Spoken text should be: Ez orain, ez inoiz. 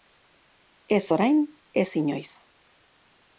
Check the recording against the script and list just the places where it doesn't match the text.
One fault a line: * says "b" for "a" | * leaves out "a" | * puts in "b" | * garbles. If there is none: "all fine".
all fine